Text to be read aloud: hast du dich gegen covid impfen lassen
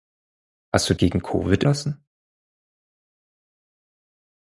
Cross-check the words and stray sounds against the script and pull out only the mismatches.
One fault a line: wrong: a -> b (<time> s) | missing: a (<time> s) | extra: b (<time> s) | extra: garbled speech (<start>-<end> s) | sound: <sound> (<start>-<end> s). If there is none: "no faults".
missing: dich (0.9 s)
missing: impfen (1.6 s)